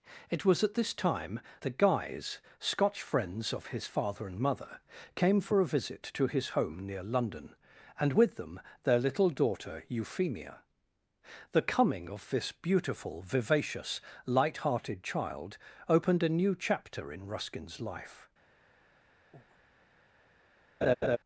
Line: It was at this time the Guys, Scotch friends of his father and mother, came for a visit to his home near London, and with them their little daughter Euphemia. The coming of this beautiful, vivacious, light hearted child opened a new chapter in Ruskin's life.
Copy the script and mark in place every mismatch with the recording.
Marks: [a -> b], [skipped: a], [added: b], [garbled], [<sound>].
It was at this time the Guys, Scotch friends of his father and mother, came for a visit to his home near London, and with them their little daughter Euphemia. The coming of this beautiful, vivacious, light hearted child opened a new chapter in Ruskin's life. [breath] [laugh]